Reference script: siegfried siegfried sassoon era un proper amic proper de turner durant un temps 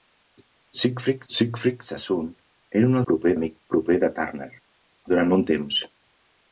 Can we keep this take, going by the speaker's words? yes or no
yes